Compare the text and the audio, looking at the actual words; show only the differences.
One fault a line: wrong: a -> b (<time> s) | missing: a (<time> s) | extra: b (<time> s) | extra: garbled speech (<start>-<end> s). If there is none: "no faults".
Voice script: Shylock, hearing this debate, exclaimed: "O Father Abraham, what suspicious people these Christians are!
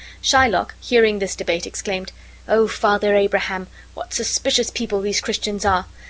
no faults